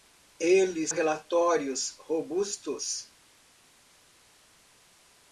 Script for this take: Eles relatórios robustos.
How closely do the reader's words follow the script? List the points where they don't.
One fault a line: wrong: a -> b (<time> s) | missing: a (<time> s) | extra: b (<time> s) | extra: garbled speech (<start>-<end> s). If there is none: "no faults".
no faults